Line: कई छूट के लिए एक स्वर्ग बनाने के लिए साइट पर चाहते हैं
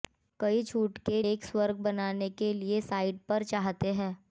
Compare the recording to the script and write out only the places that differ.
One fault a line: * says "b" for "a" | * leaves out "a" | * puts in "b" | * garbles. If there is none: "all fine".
* leaves out "लिए"